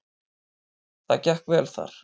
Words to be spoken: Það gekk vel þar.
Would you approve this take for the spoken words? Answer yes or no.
yes